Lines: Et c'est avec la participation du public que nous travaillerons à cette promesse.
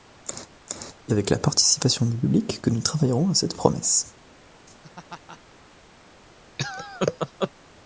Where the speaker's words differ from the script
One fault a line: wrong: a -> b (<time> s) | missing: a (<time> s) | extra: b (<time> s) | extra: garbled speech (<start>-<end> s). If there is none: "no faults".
missing: c'est (1.1 s)